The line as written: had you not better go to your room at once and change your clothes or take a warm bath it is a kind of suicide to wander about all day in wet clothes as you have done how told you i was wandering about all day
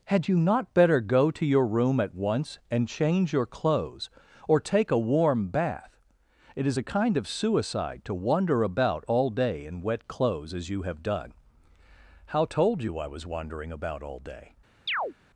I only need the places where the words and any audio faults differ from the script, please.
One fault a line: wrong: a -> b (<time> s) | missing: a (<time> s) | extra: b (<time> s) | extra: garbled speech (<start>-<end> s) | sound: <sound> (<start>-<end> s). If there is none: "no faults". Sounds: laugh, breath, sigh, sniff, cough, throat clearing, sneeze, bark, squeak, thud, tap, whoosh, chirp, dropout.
sound: chirp (14.9-15.1 s)